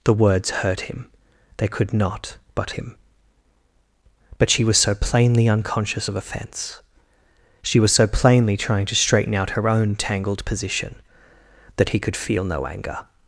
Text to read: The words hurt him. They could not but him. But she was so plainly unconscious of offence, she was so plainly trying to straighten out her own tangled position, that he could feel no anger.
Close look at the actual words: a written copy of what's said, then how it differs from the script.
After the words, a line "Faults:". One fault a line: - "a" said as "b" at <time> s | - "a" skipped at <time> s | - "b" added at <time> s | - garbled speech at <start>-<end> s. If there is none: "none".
The words hurt him. They could not but him. But she was so plainly unconscious of offence, she was so plainly trying to straighten out her own tangled position, that he could feel no anger.
Faults:
none